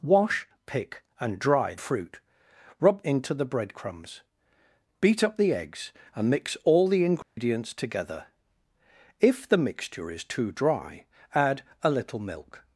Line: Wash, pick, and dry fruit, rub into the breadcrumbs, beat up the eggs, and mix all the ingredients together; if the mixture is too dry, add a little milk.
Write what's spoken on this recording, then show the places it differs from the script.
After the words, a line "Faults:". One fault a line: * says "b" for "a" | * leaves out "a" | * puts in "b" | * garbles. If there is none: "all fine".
Wash, pick, and dry fruit, rub into the breadcrumbs, beat up the eggs, and mix all the ingredients together; if the mixture is too dry, add a little milk.
Faults:
all fine